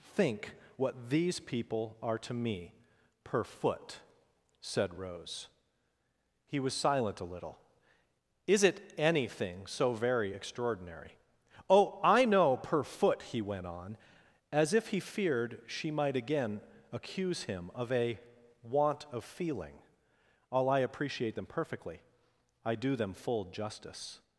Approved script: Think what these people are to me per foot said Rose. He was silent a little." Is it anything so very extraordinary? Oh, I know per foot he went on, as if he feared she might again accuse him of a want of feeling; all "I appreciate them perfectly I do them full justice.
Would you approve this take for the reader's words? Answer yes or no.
yes